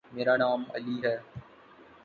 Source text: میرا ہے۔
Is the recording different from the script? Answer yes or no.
yes